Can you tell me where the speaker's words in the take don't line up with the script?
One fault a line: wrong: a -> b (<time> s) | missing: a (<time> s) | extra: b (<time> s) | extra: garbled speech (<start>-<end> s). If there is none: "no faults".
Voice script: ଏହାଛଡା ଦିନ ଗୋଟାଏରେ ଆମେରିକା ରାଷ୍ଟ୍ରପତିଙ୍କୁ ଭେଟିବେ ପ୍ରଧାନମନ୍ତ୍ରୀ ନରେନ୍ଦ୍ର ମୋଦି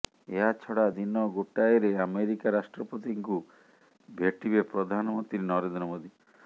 no faults